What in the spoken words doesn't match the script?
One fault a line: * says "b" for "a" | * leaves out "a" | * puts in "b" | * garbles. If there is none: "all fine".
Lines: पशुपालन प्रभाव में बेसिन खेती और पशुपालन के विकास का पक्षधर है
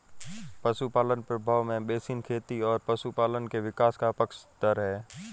all fine